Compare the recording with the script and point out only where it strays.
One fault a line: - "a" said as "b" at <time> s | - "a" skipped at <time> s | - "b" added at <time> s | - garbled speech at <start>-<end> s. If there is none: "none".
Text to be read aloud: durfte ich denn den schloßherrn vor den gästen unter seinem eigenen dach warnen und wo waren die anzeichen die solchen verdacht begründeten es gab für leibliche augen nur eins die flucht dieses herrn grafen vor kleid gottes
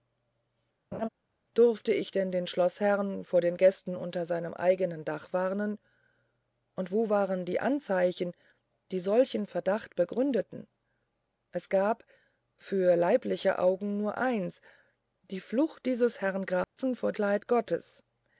none